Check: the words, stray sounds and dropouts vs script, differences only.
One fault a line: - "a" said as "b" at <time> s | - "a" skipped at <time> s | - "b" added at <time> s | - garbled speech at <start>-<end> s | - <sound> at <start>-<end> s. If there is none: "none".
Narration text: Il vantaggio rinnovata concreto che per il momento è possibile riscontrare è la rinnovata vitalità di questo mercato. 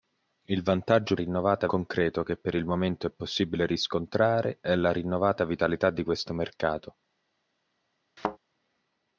- thud at 8.2-8.4 s